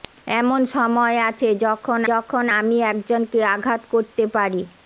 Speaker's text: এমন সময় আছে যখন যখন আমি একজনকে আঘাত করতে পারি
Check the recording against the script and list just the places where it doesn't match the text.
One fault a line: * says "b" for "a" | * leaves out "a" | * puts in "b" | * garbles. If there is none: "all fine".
all fine